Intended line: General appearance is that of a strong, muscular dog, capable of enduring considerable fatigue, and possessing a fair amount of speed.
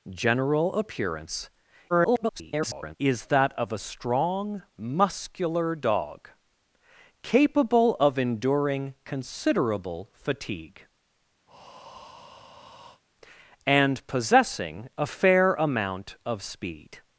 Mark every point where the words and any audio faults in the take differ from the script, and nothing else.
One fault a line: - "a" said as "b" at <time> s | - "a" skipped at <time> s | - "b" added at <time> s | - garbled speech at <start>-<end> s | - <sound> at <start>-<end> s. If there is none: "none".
- garbled speech at 1.9-3.0 s
- breath at 11.5-13.0 s